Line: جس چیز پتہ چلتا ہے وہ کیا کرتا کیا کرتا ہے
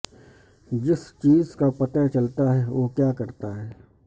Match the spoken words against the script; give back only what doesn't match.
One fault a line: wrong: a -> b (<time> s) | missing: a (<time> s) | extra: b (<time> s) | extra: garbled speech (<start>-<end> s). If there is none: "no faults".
extra: کا (1.5 s)
missing: کیا کرتا (3.6 s)